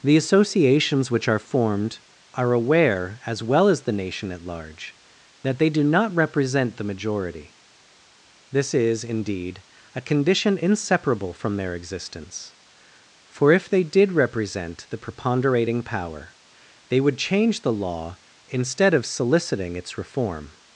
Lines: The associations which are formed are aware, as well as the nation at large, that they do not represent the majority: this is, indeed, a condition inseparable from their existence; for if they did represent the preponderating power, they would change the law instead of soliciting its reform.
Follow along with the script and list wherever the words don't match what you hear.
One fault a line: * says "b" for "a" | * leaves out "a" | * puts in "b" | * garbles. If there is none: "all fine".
all fine